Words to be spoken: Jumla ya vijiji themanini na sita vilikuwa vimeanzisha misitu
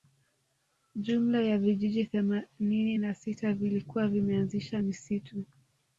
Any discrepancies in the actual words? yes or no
no